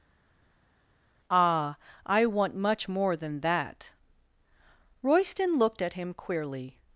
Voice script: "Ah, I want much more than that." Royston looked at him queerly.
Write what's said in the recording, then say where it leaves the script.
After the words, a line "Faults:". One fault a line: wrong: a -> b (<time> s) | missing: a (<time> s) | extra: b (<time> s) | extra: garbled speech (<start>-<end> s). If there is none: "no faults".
"Ah, I want much more than that." Royston looked at him queerly.
Faults:
no faults